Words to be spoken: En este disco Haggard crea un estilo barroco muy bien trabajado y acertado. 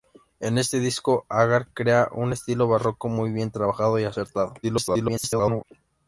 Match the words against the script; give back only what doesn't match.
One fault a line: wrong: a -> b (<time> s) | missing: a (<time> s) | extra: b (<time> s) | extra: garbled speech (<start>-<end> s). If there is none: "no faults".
extra: garbled speech (4.6-5.6 s)